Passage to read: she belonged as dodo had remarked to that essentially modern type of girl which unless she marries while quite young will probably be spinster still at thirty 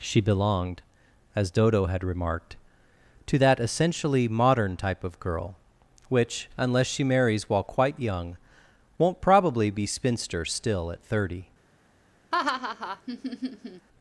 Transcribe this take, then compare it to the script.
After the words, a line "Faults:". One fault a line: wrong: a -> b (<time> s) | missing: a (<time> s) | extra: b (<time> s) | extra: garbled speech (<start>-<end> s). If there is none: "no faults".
she belonged as dodo had remarked to that essentially modern type of girl which unless she marries while quite young won't probably be spinster still at thirty
Faults:
wrong: will -> won't (9.0 s)